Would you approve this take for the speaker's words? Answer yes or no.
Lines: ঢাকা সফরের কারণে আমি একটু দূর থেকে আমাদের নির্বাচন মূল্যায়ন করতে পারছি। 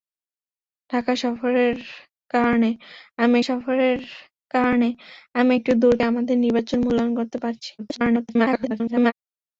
no